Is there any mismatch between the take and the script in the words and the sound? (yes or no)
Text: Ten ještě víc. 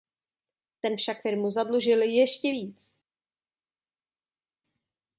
yes